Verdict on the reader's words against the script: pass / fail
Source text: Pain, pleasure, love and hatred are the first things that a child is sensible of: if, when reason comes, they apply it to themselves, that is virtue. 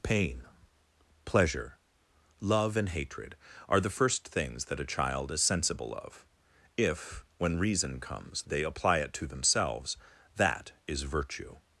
pass